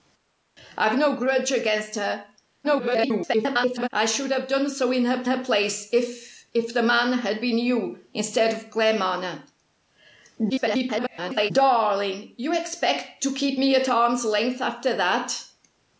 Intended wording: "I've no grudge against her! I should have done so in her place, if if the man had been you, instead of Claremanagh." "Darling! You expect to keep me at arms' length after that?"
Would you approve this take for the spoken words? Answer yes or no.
no